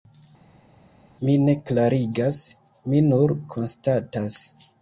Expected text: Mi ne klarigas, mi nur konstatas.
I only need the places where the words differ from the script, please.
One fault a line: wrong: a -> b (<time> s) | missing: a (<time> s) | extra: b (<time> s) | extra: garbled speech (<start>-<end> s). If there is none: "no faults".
no faults